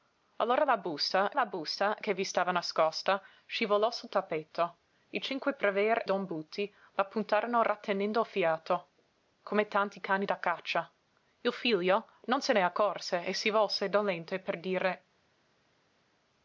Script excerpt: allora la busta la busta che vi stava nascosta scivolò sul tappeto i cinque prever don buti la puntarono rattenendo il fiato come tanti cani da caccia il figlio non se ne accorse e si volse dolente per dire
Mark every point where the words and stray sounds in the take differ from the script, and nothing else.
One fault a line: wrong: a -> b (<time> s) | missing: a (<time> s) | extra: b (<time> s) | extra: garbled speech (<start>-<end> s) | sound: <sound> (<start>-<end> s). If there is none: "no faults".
no faults